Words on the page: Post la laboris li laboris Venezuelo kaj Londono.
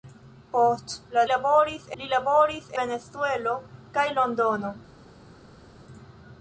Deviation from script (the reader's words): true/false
false